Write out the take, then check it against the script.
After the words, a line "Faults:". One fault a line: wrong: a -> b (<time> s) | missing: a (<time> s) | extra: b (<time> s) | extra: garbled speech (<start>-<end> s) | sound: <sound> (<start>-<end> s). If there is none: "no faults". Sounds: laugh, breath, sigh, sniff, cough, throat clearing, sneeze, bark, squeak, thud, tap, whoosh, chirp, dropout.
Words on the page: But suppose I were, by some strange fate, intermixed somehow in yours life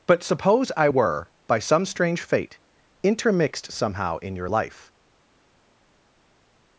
But suppose I were, by some strange fate, intermixed somehow in your life
Faults:
wrong: yours -> your (4.4 s)